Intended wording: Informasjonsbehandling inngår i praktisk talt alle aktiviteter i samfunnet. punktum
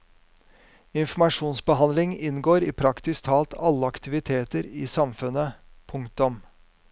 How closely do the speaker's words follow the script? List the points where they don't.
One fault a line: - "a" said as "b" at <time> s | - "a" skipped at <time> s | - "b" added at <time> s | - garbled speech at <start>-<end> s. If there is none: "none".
none